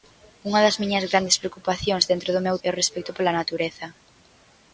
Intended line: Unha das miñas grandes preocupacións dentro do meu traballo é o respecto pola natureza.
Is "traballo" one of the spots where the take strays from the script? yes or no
yes